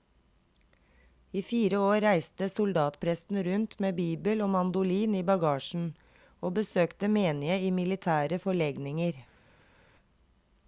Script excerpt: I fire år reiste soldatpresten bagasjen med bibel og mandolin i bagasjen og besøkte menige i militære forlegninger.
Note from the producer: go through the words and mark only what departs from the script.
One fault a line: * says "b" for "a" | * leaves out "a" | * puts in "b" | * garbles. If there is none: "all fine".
* says "rundt" for "bagasjen"